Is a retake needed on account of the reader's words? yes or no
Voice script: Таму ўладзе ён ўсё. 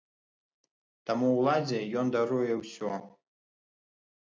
yes